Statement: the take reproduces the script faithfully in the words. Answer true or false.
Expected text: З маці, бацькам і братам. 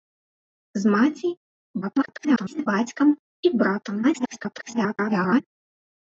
false